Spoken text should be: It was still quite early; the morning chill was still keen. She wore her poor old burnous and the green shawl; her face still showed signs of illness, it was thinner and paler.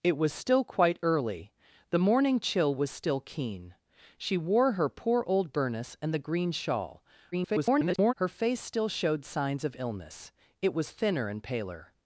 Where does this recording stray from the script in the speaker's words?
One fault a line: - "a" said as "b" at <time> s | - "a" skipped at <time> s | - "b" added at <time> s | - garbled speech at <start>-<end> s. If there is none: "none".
- garbled speech at 7.3-8.1 s